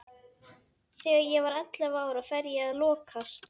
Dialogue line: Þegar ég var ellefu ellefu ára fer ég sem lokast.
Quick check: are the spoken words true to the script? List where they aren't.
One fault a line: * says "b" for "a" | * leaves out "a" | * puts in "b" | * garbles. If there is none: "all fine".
* leaves out "ellefu"
* says "að" for "sem"